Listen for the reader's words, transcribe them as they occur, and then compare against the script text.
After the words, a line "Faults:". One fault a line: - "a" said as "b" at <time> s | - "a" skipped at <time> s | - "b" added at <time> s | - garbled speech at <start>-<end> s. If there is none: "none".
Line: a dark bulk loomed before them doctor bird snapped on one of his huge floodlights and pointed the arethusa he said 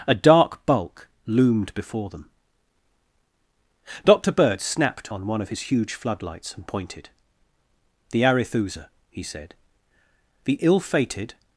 a dark bulk loomed before them doctor bird snapped on one of his huge floodlights and pointed the arethusa he said the ill fated
Faults:
- "the ill fated" added at 10.4 s